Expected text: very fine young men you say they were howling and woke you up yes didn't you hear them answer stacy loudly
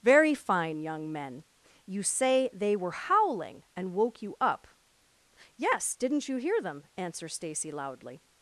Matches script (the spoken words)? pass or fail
pass